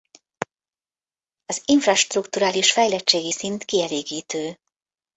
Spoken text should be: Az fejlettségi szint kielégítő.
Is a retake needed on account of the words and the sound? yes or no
yes